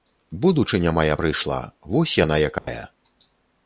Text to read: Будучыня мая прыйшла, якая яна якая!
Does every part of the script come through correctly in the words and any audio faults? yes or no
no